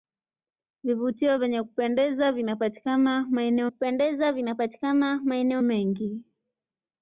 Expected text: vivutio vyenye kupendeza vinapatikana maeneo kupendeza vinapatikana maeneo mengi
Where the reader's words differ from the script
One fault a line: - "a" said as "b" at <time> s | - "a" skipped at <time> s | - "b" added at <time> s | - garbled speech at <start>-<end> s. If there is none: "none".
none